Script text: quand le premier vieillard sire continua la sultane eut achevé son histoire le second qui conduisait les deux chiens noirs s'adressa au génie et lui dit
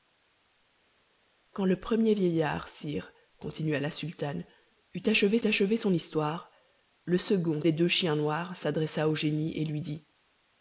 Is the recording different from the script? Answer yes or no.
yes